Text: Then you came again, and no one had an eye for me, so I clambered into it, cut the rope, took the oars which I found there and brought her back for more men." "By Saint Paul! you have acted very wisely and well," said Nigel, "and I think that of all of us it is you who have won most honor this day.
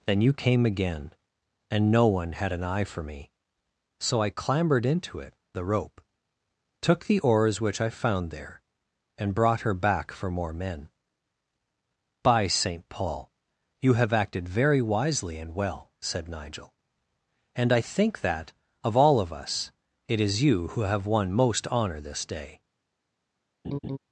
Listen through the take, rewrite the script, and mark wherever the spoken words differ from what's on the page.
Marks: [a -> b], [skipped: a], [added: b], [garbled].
Then you came again, and no one had an eye for me, so I clambered into it, [skipped: cut] the rope, took the oars which I found there and brought her back for more men." "By Saint Paul! you have acted very wisely and well," said Nigel, "and I think that of all of us it is you who have won most honor this day.